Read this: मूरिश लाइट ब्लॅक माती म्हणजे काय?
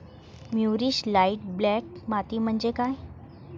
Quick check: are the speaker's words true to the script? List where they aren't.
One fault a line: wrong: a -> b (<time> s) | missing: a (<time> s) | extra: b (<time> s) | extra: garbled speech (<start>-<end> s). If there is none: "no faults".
no faults